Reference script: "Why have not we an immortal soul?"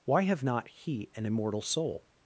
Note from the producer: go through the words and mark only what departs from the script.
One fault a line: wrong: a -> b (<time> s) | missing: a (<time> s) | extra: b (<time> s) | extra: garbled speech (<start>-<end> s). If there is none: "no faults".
wrong: we -> he (0.7 s)